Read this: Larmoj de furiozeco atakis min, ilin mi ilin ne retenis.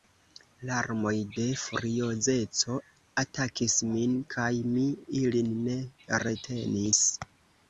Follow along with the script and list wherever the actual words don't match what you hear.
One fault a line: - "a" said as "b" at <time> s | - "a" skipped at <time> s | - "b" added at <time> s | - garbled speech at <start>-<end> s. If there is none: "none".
- "ilin" said as "kaj" at 4.3 s